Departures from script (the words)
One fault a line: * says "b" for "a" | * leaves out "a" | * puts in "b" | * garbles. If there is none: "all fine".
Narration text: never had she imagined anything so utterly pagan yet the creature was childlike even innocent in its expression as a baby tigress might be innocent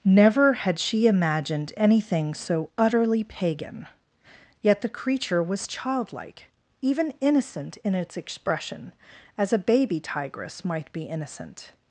all fine